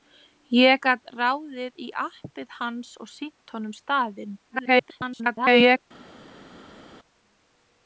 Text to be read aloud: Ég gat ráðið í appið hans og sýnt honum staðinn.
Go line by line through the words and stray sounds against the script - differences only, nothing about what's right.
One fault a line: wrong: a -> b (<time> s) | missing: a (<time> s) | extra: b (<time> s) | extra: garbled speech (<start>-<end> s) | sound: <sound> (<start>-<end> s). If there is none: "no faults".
extra: garbled speech (4.5-5.8 s)